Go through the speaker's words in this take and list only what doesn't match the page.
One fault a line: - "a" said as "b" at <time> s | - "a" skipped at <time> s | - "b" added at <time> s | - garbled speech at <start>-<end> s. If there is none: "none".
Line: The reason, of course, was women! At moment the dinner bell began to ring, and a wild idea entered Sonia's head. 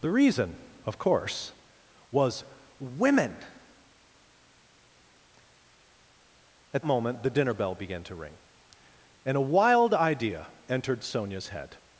none